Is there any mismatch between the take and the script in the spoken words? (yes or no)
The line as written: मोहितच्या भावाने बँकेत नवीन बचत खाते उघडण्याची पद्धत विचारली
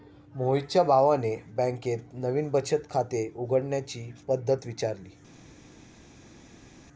no